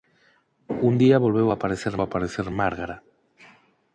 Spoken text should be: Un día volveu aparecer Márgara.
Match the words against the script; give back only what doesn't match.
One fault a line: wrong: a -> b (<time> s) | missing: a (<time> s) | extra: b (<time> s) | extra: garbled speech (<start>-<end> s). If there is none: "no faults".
extra: aparecer (2.0 s)